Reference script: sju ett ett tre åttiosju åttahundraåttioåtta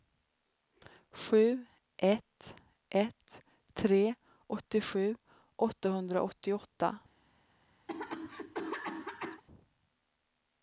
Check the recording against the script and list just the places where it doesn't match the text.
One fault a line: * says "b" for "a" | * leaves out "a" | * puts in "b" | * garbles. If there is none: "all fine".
all fine